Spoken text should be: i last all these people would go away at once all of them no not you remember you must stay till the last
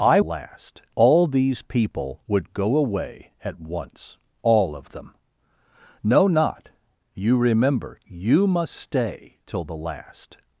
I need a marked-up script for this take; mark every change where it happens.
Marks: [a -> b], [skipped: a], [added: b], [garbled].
i last all these people would go away at once all of them no not you remember you must stay till the last